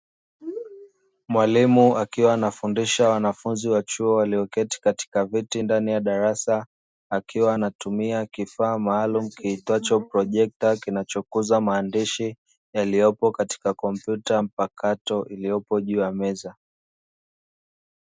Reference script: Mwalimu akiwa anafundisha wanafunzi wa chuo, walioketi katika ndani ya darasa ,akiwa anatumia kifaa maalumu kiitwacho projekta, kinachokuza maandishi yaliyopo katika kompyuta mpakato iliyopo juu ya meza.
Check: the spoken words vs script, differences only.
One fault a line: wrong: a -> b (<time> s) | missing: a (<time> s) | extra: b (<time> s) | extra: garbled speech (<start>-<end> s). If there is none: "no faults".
extra: viti (5.2 s)